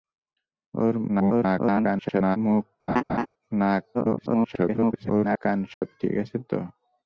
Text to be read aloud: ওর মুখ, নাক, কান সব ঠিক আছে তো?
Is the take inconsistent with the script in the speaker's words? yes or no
yes